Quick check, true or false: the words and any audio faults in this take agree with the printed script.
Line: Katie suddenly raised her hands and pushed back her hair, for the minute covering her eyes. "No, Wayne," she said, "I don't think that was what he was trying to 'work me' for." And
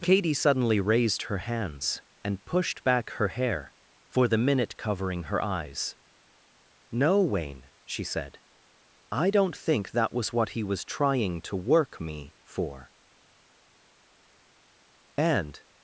true